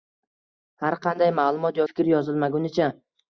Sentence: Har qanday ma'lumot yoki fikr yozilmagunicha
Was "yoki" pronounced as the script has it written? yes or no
no